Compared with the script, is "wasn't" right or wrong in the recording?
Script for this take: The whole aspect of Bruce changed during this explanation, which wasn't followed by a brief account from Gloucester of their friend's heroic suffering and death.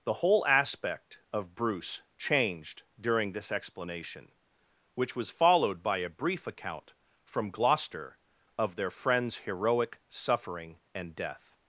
wrong